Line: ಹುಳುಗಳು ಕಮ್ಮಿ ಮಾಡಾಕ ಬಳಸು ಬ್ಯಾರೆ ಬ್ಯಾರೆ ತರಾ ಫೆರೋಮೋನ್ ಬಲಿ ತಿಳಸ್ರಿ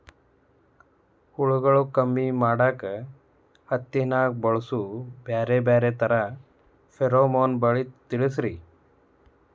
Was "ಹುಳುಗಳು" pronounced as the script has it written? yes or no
yes